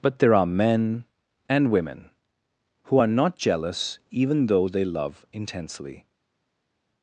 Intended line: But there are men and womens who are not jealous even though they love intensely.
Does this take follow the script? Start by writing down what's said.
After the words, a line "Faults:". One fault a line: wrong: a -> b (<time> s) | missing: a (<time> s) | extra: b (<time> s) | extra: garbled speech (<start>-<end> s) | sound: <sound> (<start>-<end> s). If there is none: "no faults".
But there are men and women who are not jealous even though they love intensely.
Faults:
wrong: womens -> women (1.7 s)